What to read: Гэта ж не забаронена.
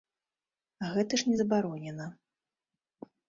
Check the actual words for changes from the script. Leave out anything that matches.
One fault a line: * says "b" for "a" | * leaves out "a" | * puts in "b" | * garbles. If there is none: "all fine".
all fine